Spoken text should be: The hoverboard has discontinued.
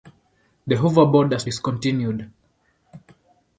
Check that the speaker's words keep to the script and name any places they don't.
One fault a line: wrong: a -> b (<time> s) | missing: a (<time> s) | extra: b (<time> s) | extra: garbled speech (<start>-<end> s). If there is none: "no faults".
no faults